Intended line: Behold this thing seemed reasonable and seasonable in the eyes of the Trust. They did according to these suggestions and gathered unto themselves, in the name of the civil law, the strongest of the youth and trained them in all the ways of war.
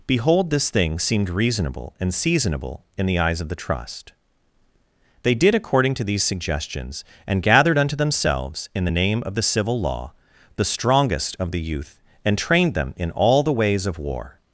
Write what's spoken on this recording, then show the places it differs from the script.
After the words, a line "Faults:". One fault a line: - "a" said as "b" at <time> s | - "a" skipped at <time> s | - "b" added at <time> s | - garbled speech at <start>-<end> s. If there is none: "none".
Behold this thing seemed reasonable and seasonable in the eyes of the Trust. They did according to these suggestions and gathered unto themselves, in the name of the civil law, the strongest of the youth and trained them in all the ways of war.
Faults:
none